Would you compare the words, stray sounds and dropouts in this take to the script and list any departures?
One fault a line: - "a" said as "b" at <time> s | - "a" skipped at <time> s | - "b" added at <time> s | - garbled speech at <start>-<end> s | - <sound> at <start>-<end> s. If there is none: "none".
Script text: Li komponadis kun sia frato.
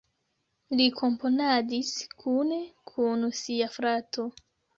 - "kune" added at 2.2 s